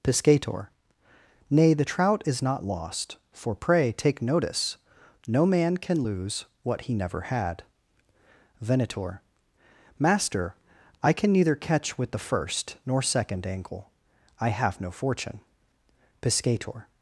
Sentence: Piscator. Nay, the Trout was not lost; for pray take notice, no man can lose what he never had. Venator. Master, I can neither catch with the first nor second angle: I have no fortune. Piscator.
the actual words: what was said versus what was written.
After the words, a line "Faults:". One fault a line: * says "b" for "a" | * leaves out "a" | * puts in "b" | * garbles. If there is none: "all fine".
Piscator. Nay, the Trout is not lost; for pray take notice, no man can lose what he never had. Venator. Master, I can neither catch with the first nor second angle: I have no fortune. Piscator.
Faults:
* says "is" for "was"